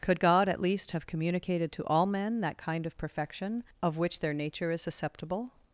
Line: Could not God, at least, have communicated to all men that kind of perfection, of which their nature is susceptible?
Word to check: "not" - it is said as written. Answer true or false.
false